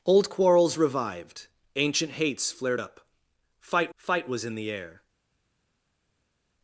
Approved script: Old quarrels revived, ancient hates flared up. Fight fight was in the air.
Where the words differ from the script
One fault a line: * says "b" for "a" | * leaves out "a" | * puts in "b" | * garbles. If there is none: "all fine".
all fine